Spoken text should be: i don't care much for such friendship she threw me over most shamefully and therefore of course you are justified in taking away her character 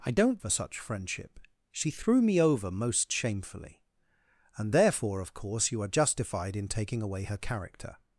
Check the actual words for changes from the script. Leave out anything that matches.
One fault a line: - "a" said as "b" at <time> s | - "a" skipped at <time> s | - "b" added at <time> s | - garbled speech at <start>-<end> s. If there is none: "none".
- "care much" skipped at 0.4 s